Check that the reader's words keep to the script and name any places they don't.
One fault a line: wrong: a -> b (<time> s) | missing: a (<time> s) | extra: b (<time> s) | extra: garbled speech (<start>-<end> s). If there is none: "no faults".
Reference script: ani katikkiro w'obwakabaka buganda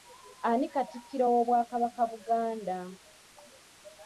no faults